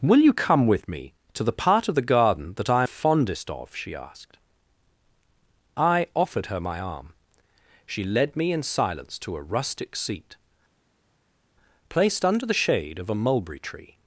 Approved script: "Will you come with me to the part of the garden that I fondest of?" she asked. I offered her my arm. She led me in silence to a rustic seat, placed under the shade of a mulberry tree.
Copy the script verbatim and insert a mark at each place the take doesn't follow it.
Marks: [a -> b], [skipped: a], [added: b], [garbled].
"Will you come with me to the part of the garden that I fondest of?" she asked. I offered her my arm. She led me in silence to a rustic seat, placed under the shade of a mulberry tree.